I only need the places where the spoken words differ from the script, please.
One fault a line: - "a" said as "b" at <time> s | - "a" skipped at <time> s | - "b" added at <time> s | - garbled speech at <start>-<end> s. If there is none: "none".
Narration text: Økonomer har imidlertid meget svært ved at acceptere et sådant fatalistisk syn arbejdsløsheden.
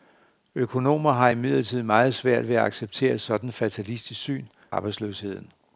none